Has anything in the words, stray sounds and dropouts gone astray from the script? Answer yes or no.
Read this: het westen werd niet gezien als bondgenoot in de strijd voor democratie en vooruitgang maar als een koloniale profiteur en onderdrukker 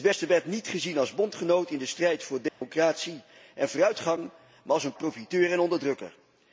yes